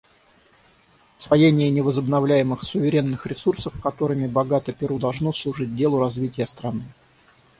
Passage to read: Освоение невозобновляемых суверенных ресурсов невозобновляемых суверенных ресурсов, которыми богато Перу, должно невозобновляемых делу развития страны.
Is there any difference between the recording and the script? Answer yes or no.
yes